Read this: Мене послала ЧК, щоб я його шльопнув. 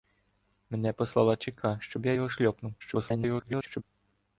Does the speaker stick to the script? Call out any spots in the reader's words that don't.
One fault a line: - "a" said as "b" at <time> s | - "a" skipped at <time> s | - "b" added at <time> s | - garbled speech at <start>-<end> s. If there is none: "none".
- garbled speech at 2.8-3.8 s